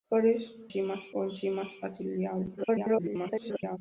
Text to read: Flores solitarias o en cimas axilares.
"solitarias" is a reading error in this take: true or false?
true